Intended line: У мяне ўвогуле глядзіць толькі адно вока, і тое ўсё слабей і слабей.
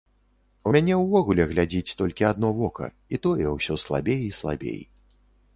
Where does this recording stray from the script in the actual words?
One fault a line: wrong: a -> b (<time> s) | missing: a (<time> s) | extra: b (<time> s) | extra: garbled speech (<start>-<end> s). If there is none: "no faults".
no faults